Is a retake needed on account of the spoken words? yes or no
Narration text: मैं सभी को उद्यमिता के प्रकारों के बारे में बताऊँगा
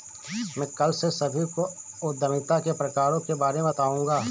yes